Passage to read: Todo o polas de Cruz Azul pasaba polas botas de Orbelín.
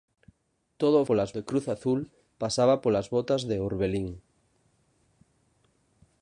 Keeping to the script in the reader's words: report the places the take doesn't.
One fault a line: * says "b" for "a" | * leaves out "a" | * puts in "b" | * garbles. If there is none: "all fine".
all fine